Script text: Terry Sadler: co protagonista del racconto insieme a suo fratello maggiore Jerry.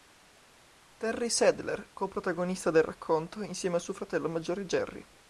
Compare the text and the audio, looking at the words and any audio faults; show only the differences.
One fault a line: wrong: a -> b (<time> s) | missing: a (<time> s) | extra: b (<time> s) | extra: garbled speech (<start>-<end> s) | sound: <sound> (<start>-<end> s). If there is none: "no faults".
no faults